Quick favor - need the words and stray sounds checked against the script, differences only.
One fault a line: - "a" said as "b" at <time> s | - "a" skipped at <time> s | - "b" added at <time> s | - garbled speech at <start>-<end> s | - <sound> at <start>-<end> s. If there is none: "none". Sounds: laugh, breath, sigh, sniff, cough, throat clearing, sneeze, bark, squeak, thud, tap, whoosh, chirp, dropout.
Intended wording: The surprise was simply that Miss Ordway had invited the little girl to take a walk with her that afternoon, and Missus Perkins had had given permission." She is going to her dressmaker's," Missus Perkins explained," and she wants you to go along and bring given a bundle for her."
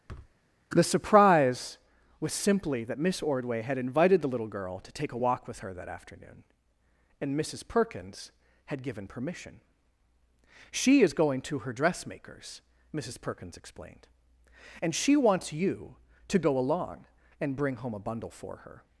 - thud at 0.1-0.3 s
- "had" skipped at 8.8 s
- "given" said as "home" at 17.8 s